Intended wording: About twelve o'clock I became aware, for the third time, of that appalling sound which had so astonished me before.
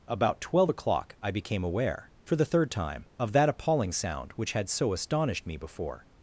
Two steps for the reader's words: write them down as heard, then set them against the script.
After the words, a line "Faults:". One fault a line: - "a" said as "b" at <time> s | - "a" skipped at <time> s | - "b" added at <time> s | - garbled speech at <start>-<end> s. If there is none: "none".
About twelve o'clock I became aware, for the third time, of that appalling sound which had so astonished me before.
Faults:
none